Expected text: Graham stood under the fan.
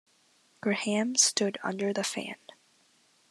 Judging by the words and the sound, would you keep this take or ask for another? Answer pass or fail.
pass